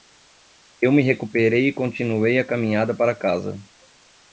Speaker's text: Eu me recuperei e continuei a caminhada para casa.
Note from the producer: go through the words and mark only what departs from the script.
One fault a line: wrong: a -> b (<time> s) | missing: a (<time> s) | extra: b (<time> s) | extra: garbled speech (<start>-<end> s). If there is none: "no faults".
no faults